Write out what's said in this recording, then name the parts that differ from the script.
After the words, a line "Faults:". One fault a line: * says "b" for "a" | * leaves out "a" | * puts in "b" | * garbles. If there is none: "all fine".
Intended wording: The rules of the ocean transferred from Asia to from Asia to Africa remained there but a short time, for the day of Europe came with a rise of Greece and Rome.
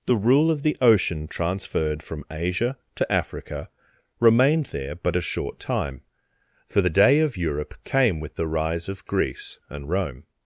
The rule of the ocean transferred from Asia to Africa remained there but a short time, for the day of Europe came with the rise of Greece and Rome.
Faults:
* says "rule" for "rules"
* leaves out "from Asia to"
* says "the" for "a"